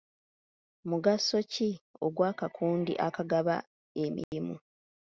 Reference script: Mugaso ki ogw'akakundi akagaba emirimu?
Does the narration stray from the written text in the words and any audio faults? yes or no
yes